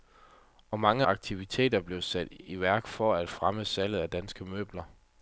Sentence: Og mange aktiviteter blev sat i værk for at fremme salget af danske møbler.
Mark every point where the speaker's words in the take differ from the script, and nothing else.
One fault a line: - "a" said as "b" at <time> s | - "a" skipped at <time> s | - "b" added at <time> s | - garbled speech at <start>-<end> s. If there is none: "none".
none